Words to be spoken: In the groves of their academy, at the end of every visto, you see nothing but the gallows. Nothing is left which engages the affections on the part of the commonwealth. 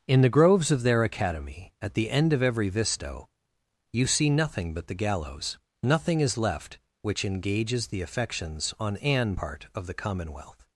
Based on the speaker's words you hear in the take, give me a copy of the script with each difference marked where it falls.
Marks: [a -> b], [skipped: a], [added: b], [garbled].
In the groves of their academy, at the end of every visto, you see nothing but the gallows. Nothing is left which engages the affections on [the -> an] part of the commonwealth.